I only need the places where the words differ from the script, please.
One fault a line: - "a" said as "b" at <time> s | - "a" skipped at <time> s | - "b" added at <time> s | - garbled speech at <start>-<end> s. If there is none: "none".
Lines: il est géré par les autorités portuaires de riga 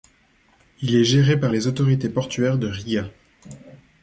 none